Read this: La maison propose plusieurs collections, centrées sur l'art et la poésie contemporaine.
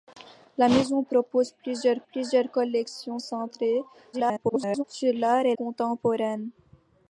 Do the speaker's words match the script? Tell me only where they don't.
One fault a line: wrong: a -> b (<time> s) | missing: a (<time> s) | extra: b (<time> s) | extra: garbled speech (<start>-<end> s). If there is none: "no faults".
extra: plusieurs (2.0 s)
extra: garbled speech (4.1-4.8 s)
missing: la poésie (5.5 s)